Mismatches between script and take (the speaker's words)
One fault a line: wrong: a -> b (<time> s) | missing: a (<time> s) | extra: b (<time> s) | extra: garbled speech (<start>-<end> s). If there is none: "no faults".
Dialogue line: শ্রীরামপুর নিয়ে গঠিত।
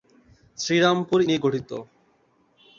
no faults